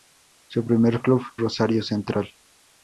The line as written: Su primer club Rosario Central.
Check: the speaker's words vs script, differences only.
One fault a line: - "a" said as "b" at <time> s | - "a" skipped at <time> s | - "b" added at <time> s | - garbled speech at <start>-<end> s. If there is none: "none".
none